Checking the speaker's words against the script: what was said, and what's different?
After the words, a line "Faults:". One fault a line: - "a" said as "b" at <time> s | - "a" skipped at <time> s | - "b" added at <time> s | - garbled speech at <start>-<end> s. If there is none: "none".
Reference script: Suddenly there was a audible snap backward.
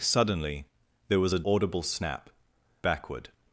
Suddenly there was a audible snap backward.
Faults:
none